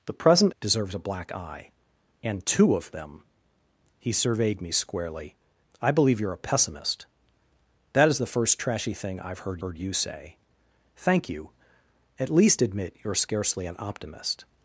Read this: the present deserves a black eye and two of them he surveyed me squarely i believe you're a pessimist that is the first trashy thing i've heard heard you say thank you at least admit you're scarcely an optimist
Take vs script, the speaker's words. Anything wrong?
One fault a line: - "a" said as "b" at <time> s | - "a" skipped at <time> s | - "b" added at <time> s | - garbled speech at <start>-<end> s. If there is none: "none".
none